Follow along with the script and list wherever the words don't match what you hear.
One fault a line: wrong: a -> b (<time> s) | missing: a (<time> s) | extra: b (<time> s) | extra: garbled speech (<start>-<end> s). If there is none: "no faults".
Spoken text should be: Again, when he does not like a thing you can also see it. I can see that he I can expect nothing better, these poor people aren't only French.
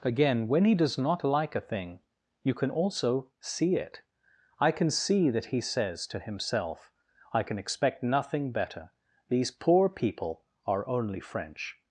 extra: says to himself (5.6 s)
wrong: aren't -> are (10.7 s)